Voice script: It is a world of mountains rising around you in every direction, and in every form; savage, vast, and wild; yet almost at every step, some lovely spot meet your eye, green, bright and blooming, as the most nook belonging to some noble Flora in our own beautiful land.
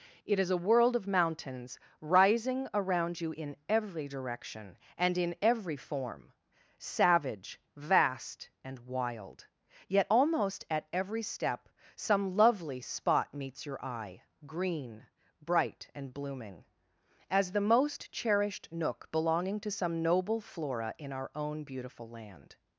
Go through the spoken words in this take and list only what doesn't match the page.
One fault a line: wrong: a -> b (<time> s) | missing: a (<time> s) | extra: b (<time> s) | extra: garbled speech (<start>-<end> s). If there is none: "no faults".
wrong: meet -> meets (13.3 s)
extra: cherished (18.1 s)